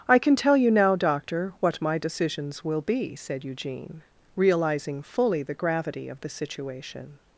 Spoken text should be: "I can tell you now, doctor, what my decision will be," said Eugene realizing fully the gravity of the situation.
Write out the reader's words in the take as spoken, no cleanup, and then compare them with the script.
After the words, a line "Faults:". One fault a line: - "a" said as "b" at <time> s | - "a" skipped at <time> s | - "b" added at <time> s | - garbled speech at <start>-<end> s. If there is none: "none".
"I can tell you now, doctor, what my decisions will be," said Eugene realizing fully the gravity of the situation.
Faults:
- "decision" said as "decisions" at 2.0 s